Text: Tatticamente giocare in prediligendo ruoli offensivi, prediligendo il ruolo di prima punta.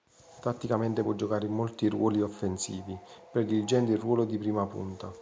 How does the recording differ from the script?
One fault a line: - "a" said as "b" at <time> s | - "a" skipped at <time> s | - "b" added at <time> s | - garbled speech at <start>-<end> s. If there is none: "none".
- "può" added at 1.0 s
- "prediligendo" said as "molti" at 1.5 s